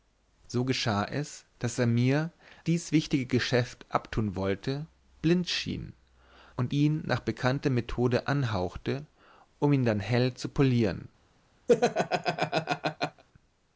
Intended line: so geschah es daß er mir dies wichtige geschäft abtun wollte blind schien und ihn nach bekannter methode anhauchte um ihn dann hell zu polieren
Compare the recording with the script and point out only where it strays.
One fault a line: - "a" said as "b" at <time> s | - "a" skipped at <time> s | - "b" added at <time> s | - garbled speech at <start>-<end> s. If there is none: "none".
none